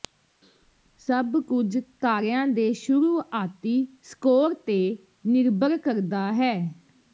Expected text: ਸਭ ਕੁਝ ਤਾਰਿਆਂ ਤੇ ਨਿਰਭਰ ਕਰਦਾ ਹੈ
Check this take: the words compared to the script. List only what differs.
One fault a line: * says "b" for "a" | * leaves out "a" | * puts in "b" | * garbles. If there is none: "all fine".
* puts in "ਦੇ ਸ਼ੁਰੂਆਤੀ ਸਕੋਰ"